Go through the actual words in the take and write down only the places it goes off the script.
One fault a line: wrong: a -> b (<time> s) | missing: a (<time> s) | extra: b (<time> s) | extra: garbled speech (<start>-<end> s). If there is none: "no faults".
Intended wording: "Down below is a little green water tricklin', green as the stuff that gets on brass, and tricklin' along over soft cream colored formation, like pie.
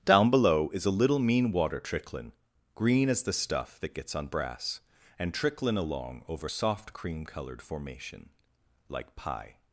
wrong: green -> mean (1.2 s)